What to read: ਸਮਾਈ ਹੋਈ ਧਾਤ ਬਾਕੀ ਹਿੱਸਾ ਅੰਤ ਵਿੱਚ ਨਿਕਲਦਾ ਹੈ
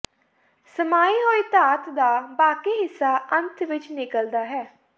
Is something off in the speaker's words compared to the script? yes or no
yes